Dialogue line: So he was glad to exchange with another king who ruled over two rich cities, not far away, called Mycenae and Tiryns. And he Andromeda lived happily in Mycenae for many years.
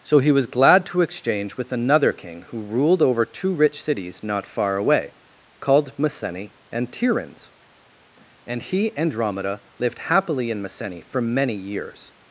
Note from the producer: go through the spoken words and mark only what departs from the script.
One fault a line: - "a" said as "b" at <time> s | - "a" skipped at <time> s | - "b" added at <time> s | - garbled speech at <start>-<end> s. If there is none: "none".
none